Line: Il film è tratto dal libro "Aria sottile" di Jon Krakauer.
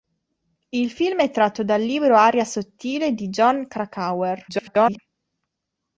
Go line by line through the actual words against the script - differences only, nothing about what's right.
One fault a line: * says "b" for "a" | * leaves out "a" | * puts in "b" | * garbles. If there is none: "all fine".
* garbles